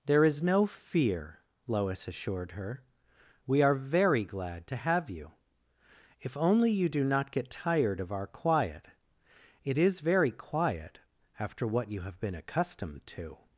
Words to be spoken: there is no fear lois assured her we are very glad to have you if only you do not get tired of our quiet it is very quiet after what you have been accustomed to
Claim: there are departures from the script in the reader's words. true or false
false